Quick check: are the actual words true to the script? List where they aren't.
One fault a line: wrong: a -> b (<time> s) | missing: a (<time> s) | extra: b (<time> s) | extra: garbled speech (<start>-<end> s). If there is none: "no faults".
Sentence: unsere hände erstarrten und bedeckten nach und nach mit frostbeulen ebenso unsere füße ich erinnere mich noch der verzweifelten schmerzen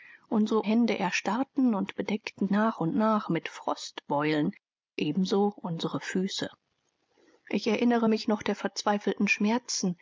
no faults